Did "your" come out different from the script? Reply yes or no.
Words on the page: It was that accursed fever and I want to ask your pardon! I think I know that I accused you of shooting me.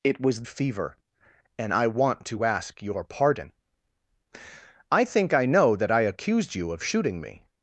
no